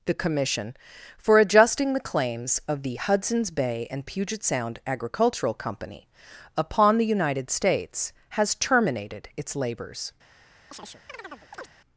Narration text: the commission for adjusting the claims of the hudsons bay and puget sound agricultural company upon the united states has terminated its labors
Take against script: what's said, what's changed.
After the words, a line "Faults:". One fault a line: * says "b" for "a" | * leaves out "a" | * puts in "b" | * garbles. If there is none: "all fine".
the commission for adjusting the claims of the hudsons bay and puget sound agricultural company upon the united states has terminated its labors
Faults:
all fine